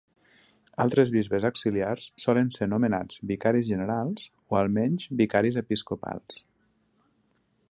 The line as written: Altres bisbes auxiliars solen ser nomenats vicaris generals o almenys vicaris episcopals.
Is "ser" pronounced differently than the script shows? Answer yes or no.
no